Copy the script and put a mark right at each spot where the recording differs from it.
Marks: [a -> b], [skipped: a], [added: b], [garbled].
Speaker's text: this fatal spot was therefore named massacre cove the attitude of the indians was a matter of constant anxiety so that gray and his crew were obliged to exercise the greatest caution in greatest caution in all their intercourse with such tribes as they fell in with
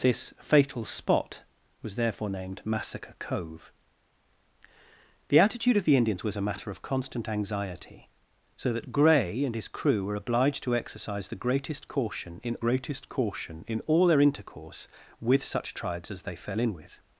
this fatal spot was therefore named massacre cove the attitude of the indians was a matter of constant anxiety so that gray and his crew were obliged to exercise the greatest caution in greatest caution in all their intercourse with such tribes as they fell in with